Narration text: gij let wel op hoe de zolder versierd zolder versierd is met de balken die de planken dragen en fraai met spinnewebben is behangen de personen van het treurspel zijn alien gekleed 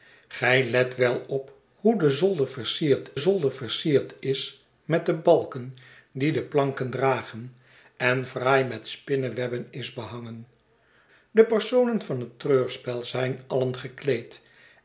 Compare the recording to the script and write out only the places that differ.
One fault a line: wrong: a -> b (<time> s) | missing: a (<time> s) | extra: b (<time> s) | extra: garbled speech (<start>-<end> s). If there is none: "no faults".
no faults